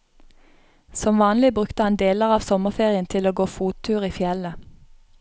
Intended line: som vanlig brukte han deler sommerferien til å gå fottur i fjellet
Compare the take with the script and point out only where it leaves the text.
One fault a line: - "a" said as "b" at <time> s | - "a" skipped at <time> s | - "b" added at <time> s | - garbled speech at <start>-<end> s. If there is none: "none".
- "av" added at 2.3 s